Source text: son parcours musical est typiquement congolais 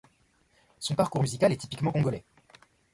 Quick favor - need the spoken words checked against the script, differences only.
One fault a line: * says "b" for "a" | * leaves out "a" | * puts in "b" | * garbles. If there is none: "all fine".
all fine